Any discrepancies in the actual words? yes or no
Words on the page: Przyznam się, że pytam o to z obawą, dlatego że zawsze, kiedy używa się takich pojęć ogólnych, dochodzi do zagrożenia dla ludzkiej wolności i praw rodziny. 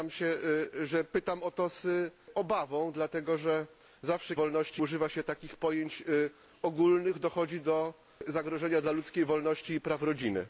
yes